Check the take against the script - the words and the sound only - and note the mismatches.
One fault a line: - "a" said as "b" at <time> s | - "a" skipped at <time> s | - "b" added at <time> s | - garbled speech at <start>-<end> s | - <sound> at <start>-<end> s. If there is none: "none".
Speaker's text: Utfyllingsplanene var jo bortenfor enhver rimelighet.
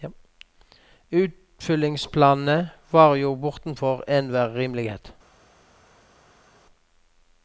none